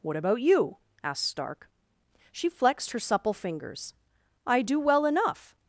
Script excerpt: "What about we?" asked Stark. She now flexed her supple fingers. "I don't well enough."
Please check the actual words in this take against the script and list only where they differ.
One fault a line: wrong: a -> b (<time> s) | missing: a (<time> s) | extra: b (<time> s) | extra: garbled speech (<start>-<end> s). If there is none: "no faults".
wrong: we -> you (0.4 s)
missing: now (2.5 s)
wrong: don't -> do (4.6 s)